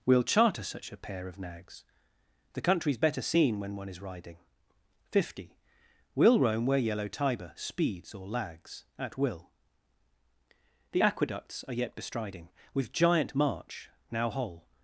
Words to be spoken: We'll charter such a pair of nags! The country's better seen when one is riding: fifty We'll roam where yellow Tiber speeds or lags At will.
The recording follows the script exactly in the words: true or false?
false